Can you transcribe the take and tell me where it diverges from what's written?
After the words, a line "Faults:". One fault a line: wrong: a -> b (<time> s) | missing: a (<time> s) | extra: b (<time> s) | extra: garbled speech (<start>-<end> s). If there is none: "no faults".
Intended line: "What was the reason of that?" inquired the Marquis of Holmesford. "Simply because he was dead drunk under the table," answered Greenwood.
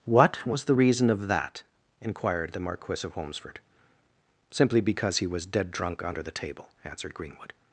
"What was the reason of that?" inquired the Marquis of Holmesford. "Simply because he was dead drunk under the table," answered Greenwood.
Faults:
no faults